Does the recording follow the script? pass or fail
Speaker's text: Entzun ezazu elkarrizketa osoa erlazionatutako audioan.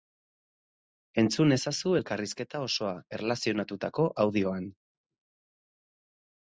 pass